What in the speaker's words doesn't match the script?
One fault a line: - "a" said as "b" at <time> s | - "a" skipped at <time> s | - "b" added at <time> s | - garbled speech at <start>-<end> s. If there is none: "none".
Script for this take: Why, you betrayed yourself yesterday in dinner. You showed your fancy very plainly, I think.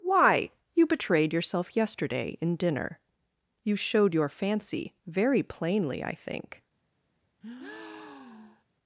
none